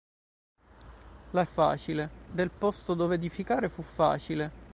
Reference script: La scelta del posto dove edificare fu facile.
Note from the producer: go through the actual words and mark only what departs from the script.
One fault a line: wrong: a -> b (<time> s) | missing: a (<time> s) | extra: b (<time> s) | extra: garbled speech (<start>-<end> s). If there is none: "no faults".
wrong: scelta -> facile (1.4 s)